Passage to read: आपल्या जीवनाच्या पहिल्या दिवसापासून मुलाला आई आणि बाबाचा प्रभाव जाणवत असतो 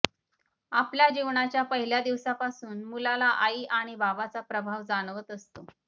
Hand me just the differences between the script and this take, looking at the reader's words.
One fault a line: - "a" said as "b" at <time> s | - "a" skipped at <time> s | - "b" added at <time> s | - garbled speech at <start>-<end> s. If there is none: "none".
none